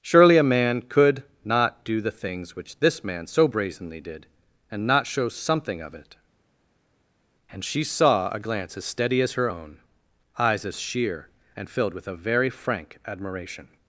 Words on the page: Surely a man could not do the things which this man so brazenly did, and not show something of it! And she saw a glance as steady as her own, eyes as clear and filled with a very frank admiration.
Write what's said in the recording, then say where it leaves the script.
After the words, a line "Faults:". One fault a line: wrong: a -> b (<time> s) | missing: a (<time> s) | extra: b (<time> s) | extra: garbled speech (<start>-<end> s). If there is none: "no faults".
Surely a man could not do the things which this man so brazenly did, and not show something of it! And she saw a glance as steady as her own, eyes as sheer and filled with a very frank admiration.
Faults:
wrong: clear -> sheer (10.8 s)